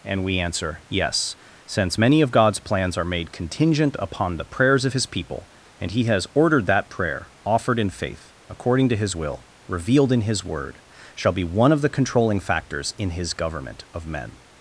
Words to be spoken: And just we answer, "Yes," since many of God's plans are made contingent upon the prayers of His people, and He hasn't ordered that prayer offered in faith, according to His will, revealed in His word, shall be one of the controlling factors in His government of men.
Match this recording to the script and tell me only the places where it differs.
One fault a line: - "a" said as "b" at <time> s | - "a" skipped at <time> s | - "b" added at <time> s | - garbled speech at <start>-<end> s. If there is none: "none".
- "just" skipped at 0.2 s
- "hasn't" said as "has" at 6.0 s